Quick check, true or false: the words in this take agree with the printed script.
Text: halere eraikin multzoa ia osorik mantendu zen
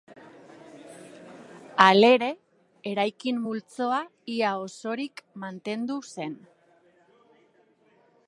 true